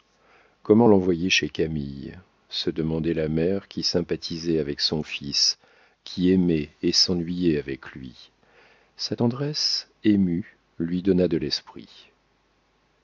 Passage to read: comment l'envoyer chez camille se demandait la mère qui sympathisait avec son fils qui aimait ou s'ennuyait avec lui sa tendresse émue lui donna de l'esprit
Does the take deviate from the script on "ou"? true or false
true